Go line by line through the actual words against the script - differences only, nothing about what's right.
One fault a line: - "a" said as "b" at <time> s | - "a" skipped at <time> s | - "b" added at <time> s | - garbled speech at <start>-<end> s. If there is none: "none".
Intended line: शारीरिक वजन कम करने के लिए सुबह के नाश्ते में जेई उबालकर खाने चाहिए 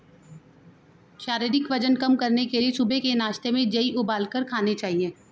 none